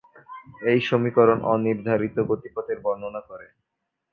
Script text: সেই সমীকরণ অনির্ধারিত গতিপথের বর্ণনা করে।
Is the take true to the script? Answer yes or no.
no